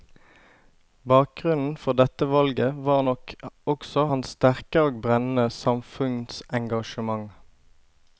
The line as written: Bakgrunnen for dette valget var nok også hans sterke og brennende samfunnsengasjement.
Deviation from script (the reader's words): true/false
false